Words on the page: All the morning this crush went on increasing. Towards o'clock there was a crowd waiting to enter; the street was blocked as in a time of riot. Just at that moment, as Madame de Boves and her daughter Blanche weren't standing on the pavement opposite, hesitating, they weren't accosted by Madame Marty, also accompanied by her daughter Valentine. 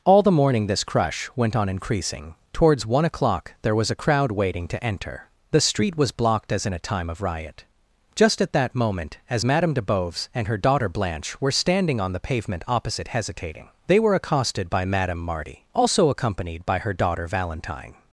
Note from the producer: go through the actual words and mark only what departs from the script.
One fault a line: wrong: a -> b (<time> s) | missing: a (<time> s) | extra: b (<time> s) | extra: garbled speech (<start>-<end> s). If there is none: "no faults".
extra: one (2.9 s)
wrong: weren't -> were (11.4 s)
wrong: weren't -> were (14.0 s)